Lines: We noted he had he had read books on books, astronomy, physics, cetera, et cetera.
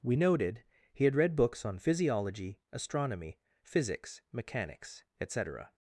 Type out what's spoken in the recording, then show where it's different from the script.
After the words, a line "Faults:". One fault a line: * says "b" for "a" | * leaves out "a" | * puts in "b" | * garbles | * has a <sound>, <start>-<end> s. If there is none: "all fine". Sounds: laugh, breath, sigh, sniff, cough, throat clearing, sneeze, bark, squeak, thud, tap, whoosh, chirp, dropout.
We noted he had read books on physiology, astronomy, physics, mechanics, et cetera.
Faults:
* leaves out "he had"
* says "physiology" for "books"
* says "mechanics" for "cetera"